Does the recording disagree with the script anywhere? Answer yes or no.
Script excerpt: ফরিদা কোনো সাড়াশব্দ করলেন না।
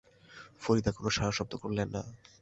no